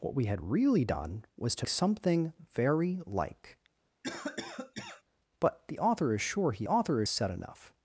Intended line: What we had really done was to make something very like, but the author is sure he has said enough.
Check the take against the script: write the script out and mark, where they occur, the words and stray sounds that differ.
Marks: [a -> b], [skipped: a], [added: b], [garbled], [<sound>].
What we had really done was to [skipped: make] something very like, [cough] but the author is sure he [has -> author] said enough.